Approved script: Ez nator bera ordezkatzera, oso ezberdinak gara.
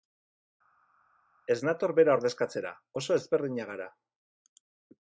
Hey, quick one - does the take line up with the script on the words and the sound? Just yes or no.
yes